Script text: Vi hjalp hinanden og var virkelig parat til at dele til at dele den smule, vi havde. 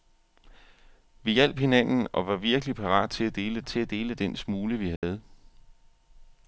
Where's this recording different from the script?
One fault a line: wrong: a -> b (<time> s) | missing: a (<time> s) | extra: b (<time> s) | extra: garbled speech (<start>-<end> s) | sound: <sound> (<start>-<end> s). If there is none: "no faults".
sound: dropout (5.0-5.0 s)